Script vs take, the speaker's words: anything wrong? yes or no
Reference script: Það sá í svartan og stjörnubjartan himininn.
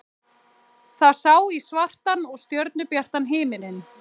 no